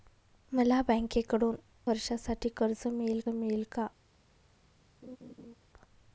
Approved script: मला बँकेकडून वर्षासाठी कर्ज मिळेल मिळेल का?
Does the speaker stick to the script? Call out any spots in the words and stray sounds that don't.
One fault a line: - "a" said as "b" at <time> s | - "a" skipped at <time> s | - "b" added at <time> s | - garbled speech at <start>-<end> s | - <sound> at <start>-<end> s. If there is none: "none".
- laugh at 5.0-5.5 s